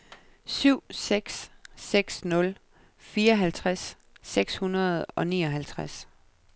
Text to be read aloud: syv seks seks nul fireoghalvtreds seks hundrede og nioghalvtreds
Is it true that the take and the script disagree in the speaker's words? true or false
false